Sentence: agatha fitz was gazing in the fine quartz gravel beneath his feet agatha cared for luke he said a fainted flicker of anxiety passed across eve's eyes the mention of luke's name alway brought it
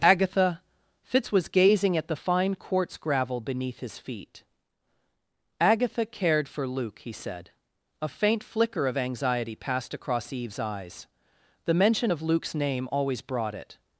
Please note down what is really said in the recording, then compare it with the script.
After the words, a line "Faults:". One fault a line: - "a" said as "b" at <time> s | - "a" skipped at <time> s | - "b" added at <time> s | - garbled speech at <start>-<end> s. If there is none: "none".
agatha fitz was gazing at the fine quartz gravel beneath his feet agatha cared for luke he said a faint flicker of anxiety passed across eve's eyes the mention of luke's name always brought it
Faults:
- "in" said as "at" at 2.0 s
- "fainted" said as "faint" at 8.1 s
- "alway" said as "always" at 12.9 s